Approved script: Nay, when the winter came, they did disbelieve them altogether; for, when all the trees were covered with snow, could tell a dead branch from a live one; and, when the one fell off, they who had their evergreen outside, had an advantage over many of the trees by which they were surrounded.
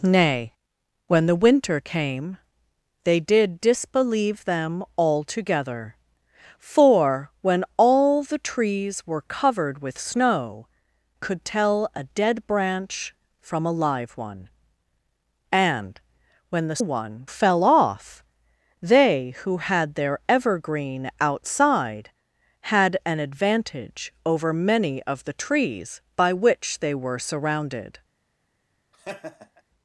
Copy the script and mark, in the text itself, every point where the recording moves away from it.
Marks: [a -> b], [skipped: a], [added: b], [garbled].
Nay, when the winter came, they did disbelieve them altogether; for, when all the trees were covered with snow, could tell a dead branch from a live one; and, when the one fell off, they who had their evergreen outside, had an advantage over many of the trees by which they were surrounded.